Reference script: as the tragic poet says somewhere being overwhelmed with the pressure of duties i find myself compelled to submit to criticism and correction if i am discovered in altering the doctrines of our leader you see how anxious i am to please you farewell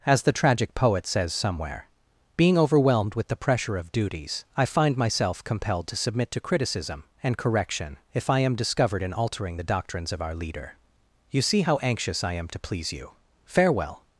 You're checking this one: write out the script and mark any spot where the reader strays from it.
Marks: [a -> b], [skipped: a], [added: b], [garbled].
as the tragic poet says somewhere being overwhelmed with the pressure of duties i find myself compelled to submit to criticism and correction if i am discovered in altering the doctrines of our leader you see how anxious i am to please you farewell